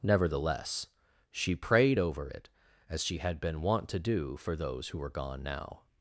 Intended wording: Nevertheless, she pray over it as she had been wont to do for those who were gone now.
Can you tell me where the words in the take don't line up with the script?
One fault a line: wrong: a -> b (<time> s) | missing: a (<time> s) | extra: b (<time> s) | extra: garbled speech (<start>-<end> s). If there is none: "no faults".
wrong: pray -> prayed (1.6 s)